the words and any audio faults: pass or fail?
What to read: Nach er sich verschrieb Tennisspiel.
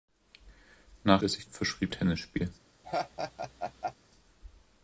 fail